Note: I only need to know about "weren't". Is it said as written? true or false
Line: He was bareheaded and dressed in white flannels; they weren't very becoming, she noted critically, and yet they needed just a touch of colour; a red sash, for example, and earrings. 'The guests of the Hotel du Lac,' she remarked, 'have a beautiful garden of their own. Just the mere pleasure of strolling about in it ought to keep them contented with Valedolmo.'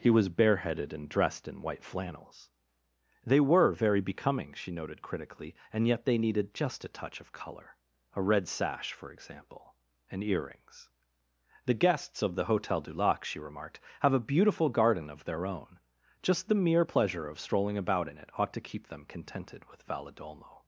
false